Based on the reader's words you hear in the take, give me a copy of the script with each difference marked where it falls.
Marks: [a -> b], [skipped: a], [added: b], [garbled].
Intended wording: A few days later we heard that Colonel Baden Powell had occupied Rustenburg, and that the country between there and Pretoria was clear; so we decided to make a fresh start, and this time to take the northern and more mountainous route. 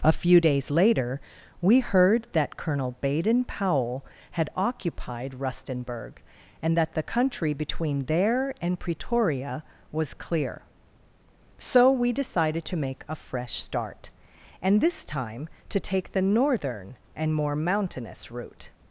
A few days later we heard that Colonel Baden Powell had occupied Rustenburg, and that the country between there and Pretoria was clear; so we decided to make a fresh start, and this time to take the northern and more mountainous route.